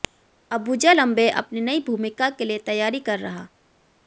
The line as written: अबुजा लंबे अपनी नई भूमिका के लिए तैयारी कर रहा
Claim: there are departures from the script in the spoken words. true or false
false